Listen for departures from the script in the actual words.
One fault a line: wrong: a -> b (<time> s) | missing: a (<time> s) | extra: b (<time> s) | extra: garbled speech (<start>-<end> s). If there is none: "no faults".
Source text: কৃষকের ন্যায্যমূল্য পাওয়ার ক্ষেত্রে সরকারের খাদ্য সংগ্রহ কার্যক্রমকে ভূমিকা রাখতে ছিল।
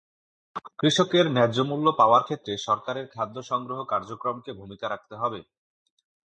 wrong: ছিল -> হবে (5.2 s)